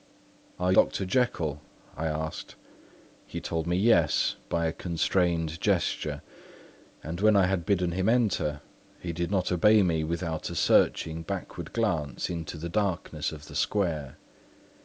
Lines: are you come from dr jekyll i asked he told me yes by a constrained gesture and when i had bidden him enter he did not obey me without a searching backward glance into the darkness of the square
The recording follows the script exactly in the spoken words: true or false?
false